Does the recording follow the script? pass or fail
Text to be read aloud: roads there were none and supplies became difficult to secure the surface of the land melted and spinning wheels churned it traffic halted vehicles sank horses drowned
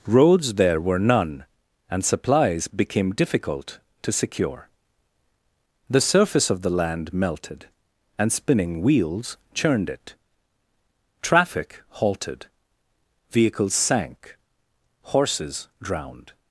pass